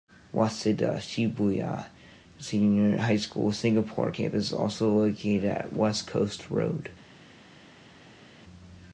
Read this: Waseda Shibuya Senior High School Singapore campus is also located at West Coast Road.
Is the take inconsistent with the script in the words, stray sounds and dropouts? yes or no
no